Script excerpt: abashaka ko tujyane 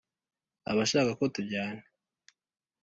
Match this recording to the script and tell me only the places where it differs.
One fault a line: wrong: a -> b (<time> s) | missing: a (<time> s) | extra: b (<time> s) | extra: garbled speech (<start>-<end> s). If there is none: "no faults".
no faults